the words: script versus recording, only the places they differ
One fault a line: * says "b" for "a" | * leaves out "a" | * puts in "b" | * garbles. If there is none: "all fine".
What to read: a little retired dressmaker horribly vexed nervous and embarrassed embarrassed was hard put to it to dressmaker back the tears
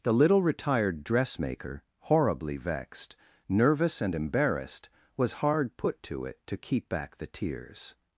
* says "the" for "a"
* leaves out "embarrassed"
* says "keep" for "dressmaker"